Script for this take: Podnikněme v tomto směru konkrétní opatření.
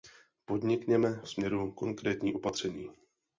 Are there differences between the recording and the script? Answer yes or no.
yes